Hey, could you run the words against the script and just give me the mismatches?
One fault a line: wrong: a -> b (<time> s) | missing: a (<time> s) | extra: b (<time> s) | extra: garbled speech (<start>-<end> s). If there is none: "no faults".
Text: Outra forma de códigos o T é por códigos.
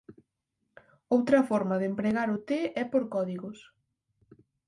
wrong: códigos -> empregar (1.9 s)